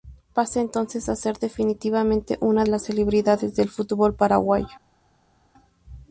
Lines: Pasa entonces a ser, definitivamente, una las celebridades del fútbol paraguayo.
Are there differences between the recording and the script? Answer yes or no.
no